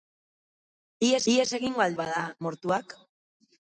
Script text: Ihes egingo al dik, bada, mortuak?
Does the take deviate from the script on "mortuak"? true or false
false